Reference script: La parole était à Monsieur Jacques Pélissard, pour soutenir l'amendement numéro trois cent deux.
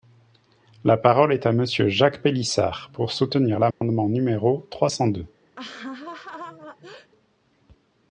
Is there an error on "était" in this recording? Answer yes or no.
yes